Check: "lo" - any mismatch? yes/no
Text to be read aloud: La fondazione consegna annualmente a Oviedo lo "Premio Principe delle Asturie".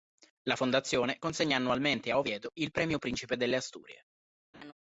yes